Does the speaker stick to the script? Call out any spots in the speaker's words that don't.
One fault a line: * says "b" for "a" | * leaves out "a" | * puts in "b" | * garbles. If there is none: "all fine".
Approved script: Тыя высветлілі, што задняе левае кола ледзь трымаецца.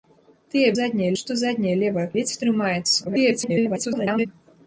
* says "задняе" for "высветлілі"
* leaves out "кола"
* garbles